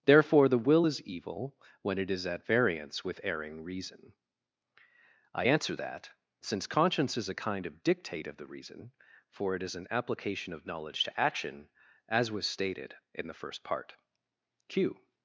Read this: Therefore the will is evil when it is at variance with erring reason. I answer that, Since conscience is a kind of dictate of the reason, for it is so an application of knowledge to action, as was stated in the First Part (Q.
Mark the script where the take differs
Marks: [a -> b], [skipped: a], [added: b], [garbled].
Therefore the will is evil when it is at variance with erring reason. I answer that, Since conscience is a kind of dictate of the reason, for it is [skipped: so] an application of knowledge to action, as was stated in the First Part (Q.